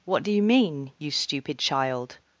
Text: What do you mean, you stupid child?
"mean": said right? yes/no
yes